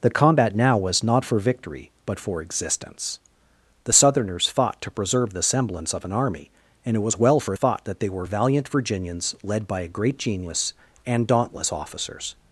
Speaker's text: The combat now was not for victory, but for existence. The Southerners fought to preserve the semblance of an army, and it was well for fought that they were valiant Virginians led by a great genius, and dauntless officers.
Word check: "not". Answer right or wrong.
right